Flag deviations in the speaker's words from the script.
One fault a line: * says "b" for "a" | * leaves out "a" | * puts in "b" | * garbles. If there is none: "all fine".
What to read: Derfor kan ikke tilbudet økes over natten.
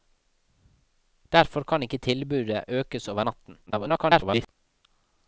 * garbles